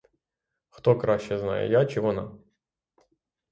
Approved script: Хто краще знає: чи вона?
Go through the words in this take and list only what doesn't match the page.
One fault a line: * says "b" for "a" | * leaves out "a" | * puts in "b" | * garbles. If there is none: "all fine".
* puts in "я"